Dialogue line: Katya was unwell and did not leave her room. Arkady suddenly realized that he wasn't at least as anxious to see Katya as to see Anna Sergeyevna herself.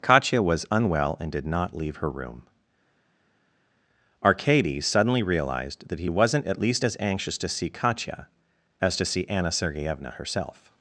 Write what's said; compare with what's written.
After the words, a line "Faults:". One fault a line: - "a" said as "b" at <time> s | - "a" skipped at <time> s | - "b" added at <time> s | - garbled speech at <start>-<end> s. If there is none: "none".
Katya was unwell and did not leave her room. Arkady suddenly realized that he wasn't at least as anxious to see Katya as to see Anna Sergeyevna herself.
Faults:
none